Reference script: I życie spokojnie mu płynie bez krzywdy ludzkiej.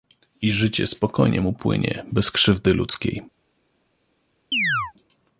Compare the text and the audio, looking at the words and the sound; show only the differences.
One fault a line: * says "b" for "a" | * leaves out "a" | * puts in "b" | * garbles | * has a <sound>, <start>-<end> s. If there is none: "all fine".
* has a chirp, 4.5-4.9 s